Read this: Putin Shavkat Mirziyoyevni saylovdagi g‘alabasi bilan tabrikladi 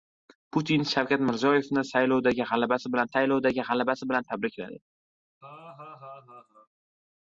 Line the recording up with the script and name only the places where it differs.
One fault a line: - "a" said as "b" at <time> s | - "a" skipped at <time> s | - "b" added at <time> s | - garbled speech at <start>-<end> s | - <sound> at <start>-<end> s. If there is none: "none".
- "saylovdagi g‘alabasi bilan" added at 3.1 s
- laugh at 5.4-6.7 s